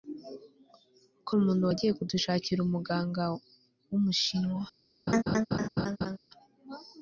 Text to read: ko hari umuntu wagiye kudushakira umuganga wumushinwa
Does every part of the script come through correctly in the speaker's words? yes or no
no